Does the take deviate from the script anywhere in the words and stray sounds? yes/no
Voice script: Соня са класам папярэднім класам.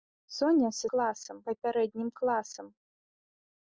no